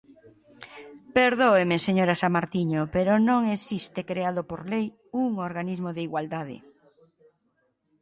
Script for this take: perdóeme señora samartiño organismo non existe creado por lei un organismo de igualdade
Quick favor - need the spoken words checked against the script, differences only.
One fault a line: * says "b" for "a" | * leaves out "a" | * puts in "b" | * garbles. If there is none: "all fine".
* says "pero" for "organismo"